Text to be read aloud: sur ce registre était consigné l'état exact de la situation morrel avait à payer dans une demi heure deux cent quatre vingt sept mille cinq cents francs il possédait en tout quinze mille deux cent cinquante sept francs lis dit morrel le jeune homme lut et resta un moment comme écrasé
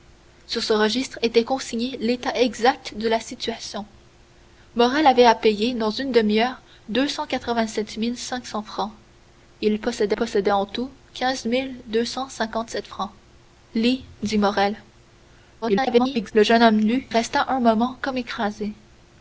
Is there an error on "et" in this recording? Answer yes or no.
yes